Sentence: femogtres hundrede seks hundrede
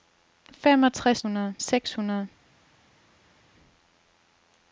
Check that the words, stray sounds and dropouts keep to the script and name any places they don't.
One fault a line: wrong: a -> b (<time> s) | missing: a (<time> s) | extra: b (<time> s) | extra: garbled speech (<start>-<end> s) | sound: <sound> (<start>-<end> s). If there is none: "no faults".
no faults